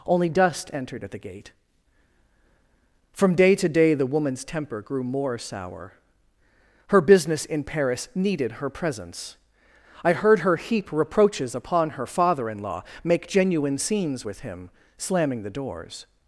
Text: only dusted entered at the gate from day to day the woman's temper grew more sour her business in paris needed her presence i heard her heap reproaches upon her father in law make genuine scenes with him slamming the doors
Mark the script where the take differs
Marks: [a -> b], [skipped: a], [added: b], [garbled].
only [dusted -> dust] entered at the gate from day to day the woman's temper grew more sour her business in paris needed her presence i heard her heap reproaches upon her father in law make genuine scenes with him slamming the doors